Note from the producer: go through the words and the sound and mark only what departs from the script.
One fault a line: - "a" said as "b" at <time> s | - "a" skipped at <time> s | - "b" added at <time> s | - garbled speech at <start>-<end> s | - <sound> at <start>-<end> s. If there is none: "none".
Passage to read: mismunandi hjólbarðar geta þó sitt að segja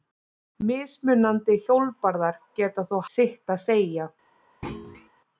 - thud at 4.6-5.1 s